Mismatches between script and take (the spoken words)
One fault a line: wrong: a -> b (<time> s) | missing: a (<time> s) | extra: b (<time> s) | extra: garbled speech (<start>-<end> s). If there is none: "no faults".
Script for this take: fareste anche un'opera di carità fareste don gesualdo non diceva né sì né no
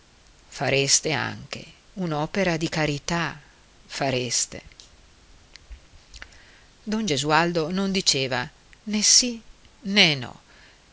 no faults